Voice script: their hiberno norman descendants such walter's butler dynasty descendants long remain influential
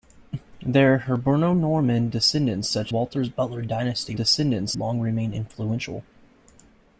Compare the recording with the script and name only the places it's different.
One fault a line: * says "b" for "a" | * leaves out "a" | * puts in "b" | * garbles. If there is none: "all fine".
all fine